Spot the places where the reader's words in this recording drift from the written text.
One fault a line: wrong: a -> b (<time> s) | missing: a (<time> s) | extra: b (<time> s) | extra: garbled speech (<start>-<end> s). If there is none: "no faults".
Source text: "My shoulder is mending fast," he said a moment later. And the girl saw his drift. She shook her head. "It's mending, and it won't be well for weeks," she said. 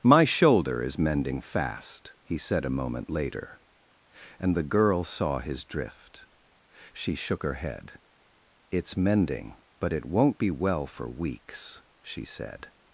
wrong: and -> but (9.8 s)